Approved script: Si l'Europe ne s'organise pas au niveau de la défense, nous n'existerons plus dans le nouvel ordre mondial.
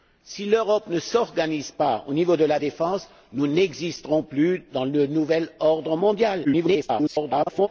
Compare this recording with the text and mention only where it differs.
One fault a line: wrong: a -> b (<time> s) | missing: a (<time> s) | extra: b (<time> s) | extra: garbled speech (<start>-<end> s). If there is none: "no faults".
extra: garbled speech (6.4-7.7 s)